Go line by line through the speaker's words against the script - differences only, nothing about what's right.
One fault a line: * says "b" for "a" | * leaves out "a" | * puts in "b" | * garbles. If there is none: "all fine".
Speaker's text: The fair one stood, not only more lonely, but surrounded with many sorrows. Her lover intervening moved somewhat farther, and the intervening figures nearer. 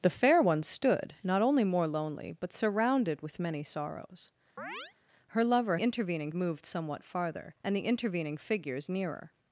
all fine